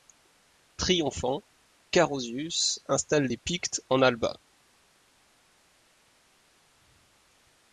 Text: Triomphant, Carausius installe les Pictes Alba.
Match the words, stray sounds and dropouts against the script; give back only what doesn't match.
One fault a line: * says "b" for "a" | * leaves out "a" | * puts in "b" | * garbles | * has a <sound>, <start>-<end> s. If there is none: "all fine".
* puts in "en"